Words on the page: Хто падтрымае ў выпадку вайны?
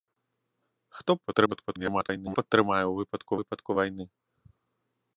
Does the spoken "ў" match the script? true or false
true